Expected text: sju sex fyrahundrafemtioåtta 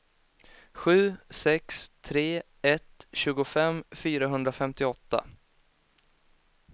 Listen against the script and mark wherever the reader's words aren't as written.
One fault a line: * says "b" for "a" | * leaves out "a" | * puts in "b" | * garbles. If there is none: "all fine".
* puts in "tre ett tjugofem"